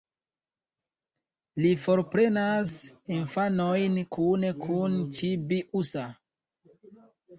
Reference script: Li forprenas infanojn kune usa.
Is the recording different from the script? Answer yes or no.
yes